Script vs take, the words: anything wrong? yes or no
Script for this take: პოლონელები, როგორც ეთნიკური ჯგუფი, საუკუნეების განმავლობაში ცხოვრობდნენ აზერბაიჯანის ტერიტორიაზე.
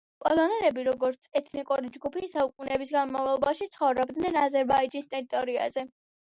no